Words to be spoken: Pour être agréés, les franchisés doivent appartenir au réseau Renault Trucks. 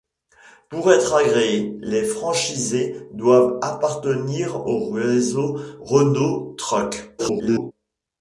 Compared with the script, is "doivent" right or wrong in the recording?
right